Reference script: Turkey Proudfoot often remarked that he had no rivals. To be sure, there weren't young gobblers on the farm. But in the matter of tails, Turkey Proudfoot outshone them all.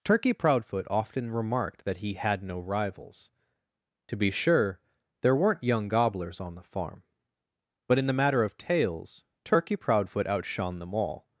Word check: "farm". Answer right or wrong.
right